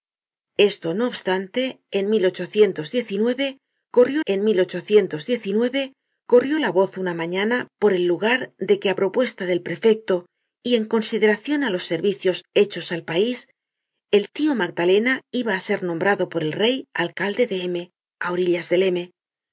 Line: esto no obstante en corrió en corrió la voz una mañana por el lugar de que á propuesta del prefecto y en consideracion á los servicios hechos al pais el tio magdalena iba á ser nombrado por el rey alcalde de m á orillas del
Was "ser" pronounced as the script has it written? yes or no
yes